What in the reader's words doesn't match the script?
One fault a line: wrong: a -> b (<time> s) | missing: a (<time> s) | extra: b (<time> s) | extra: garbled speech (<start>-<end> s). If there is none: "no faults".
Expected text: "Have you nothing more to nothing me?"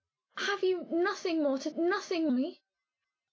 no faults